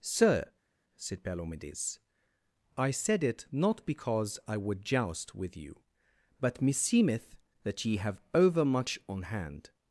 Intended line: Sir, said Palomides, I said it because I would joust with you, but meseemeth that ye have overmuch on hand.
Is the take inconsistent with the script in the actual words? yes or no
yes